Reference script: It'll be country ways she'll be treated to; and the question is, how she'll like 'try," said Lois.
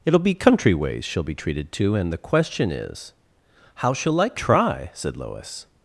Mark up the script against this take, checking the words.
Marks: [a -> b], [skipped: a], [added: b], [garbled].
It'll be country ways she'll be treated to; and the question is, how she'll like 'try," said Lois.